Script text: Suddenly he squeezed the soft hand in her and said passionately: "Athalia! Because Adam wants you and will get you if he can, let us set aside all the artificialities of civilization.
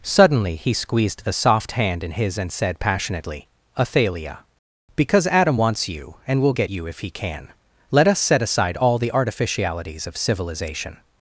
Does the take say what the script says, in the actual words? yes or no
no